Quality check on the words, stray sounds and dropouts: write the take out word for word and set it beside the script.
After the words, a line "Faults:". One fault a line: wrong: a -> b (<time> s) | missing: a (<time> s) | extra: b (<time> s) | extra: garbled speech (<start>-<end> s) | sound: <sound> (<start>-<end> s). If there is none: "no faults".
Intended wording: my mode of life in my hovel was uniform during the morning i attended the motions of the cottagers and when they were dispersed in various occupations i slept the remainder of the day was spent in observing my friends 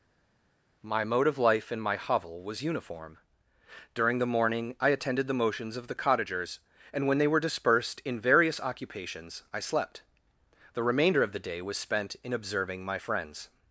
my mode of life in my hovel was uniform during the morning i attended the motions of the cottagers and when they were dispersed in various occupations i slept the remainder of the day was spent in observing my friends
Faults:
no faults